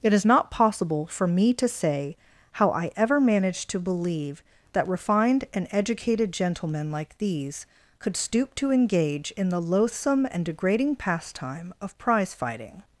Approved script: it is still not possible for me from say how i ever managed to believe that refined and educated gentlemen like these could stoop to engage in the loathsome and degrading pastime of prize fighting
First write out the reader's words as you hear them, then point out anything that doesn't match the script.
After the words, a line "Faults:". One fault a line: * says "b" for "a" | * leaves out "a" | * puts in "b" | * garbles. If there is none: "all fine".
it is not possible for me to say how i ever managed to believe that refined and educated gentlemen like these could stoop to engage in the loathsome and degrading pastime of prize fighting
Faults:
* leaves out "still"
* says "to" for "from"